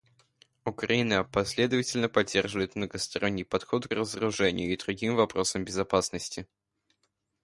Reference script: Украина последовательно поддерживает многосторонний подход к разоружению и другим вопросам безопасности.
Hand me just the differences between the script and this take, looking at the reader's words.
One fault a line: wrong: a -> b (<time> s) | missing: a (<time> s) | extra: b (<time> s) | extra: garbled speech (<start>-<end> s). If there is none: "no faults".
missing: к (3.9 s)